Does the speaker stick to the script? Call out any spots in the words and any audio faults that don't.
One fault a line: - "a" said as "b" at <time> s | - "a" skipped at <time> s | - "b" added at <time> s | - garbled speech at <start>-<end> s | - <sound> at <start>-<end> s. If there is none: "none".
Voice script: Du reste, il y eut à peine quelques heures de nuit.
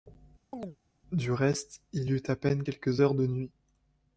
- chirp at 0.5-0.8 s